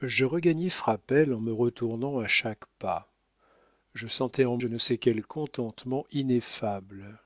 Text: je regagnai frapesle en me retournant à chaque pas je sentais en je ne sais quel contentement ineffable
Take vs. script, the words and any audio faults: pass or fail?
pass